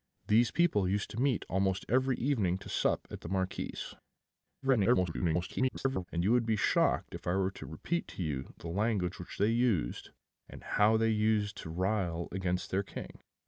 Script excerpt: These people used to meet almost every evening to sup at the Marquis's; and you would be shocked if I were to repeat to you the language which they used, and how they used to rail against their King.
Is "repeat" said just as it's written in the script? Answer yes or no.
yes